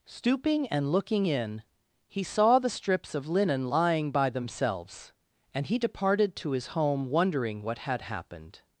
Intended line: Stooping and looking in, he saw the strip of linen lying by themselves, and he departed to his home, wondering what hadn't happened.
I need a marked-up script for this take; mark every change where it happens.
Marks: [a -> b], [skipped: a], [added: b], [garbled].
Stooping and looking in, he saw the [strip -> strips] of linen lying by themselves, and he departed to his home, wondering what [hadn't -> had] happened.